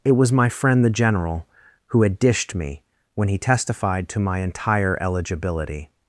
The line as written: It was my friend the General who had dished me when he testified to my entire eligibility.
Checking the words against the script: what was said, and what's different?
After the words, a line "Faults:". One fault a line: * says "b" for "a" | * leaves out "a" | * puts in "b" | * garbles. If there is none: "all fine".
It was my friend the General who had dished me when he testified to my entire eligibility.
Faults:
all fine